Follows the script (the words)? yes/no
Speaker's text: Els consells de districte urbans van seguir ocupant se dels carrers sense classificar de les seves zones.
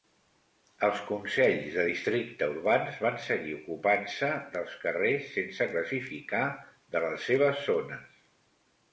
yes